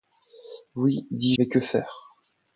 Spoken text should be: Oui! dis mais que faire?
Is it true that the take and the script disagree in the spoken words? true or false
false